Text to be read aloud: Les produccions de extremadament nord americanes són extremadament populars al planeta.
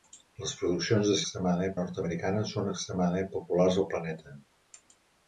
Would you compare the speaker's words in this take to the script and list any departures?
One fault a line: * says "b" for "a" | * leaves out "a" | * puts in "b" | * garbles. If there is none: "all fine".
all fine